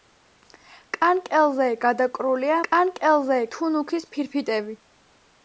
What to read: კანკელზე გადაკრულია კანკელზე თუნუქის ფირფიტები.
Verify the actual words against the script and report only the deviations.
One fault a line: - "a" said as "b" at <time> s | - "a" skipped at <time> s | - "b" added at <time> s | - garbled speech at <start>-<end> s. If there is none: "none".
none